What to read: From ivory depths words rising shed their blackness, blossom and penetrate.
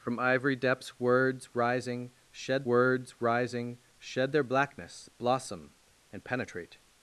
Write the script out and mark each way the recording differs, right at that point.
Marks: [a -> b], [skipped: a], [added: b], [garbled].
From ivory depths words rising shed [added: words rising shed] their blackness, blossom and penetrate.